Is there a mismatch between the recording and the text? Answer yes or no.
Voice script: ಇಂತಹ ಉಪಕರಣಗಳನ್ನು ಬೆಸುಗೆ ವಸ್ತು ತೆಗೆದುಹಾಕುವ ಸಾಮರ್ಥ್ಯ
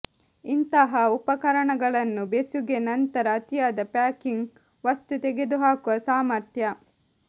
yes